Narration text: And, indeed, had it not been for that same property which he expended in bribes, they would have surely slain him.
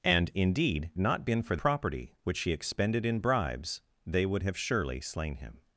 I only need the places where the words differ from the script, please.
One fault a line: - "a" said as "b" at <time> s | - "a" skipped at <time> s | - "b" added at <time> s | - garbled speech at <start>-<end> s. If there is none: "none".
- "had it" skipped at 0.9 s
- "that same" skipped at 1.6 s